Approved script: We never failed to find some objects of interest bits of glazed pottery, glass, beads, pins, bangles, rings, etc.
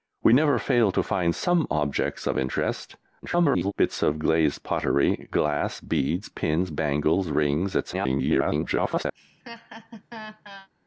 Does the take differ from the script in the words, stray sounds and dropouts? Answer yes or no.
yes